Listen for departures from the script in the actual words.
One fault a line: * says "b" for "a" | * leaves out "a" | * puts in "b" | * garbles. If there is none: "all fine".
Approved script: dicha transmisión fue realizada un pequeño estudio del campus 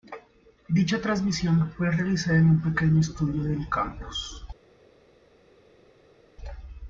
* puts in "en"